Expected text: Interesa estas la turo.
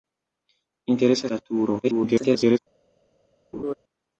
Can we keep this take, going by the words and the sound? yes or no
no